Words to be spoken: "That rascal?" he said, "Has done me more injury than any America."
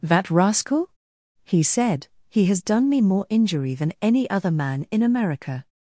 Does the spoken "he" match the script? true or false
true